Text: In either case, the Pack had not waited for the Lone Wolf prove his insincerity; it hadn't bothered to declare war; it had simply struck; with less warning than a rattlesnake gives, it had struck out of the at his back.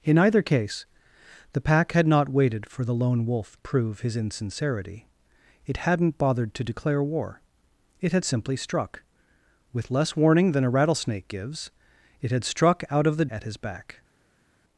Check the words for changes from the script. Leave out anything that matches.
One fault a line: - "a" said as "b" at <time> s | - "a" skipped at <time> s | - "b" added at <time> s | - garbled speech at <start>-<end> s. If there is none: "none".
none